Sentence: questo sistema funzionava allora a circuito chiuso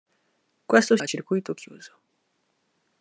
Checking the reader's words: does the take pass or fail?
fail